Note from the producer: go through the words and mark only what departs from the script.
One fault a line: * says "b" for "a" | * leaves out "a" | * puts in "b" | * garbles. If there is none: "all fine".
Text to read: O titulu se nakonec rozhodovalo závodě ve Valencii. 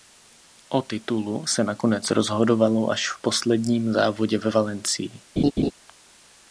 * puts in "až v posledním"